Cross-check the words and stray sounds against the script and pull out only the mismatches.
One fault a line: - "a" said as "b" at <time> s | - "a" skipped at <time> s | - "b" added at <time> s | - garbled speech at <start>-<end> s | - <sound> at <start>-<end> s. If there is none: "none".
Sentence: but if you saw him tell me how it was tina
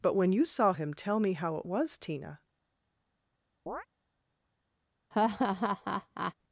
- "if" said as "when" at 0.1 s
- chirp at 3.7-3.9 s
- laugh at 5.1-6.3 s